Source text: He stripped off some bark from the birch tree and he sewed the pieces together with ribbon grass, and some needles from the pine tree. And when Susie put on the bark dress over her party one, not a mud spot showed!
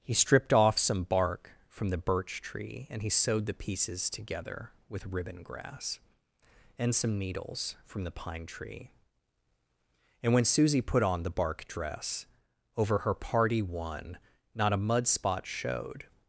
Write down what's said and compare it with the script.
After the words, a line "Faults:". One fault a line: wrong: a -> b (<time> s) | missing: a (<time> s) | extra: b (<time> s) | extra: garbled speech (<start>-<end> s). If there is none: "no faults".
He stripped off some bark from the birch tree and he sewed the pieces together with ribbon grass, and some needles from the pine tree. And when Susie put on the bark dress over her party one, not a mud spot showed!
Faults:
no faults